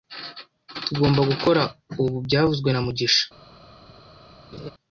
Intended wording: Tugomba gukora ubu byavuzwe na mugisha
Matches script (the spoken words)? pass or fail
pass